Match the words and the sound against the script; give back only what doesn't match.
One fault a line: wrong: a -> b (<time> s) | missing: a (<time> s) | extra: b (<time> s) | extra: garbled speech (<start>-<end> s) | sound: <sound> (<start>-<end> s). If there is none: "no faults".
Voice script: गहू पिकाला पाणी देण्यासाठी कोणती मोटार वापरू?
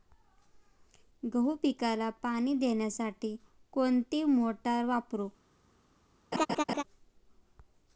sound: laugh (6.3-6.8 s)